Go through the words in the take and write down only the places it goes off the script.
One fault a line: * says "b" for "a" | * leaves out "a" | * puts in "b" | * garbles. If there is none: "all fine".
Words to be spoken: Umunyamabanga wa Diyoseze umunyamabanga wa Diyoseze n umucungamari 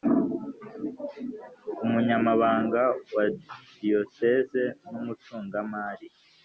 * leaves out "umunyamabanga wa Diyoseze"